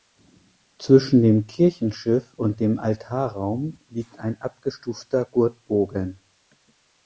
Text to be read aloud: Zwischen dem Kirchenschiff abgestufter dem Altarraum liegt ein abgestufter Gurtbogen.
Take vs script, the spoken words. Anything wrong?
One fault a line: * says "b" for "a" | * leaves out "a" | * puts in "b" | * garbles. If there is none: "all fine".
* says "und" for "abgestufter"